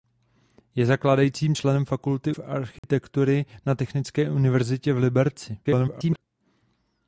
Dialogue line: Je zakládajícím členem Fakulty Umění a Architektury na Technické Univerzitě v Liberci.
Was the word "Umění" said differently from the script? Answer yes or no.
yes